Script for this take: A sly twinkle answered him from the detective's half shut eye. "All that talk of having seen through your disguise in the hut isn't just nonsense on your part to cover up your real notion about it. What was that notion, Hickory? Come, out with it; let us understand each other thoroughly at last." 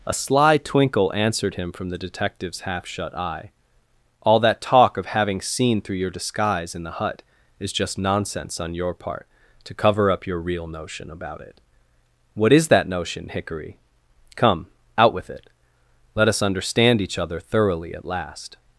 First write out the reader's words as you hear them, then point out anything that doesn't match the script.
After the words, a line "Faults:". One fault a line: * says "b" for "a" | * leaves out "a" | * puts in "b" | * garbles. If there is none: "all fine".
A sly twinkle answered him from the detective's half shut eye. "All that talk of having seen through your disguise in the hut is just nonsense on your part to cover up your real notion about it. What is that notion, Hickory? Come, out with it; let us understand each other thoroughly at last."
Faults:
* says "is" for "isn't"
* says "is" for "was"